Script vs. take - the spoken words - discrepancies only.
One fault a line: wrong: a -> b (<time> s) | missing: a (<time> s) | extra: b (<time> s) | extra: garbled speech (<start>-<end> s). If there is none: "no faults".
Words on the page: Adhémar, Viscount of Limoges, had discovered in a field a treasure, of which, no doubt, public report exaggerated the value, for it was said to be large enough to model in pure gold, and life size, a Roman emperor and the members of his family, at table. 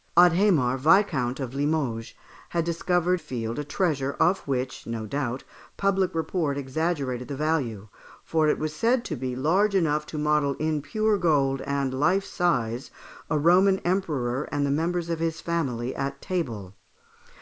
missing: in (3.2 s)